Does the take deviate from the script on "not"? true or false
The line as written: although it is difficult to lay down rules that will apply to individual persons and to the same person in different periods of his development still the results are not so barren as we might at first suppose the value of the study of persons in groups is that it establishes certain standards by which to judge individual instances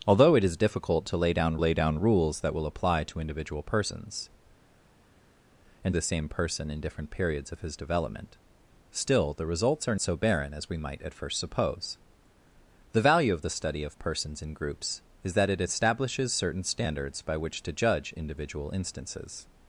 true